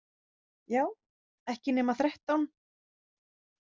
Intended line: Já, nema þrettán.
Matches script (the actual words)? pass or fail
fail